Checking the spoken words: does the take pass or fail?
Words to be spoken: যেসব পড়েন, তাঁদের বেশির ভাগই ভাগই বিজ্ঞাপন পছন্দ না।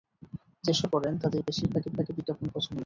pass